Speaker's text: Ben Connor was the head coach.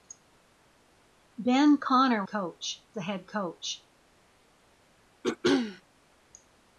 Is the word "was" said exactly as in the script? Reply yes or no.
no